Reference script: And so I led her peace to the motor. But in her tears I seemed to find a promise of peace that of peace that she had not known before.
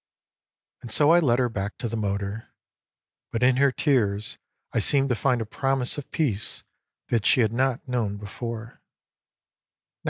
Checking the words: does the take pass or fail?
fail